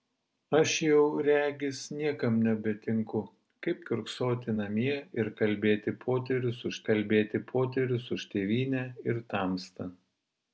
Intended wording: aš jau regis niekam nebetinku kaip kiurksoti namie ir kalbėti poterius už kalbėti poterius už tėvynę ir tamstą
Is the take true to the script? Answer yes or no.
yes